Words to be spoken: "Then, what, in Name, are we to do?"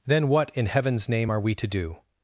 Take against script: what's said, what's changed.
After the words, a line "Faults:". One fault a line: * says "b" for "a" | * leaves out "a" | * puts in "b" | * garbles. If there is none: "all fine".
"Then, what, in Heaven's name, are we to do?"
Faults:
* puts in "Heaven's"